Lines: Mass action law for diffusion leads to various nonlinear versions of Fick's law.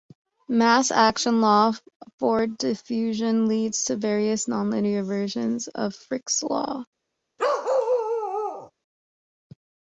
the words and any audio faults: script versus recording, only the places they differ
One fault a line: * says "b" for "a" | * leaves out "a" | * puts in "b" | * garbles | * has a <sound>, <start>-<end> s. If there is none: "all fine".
* has a bark, 7.4-8.7 s